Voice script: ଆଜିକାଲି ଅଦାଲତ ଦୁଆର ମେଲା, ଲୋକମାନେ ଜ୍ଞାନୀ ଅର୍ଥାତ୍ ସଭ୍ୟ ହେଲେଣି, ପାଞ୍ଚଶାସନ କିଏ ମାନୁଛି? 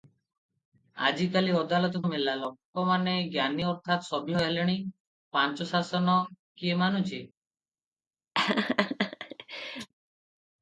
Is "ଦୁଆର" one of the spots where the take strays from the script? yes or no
yes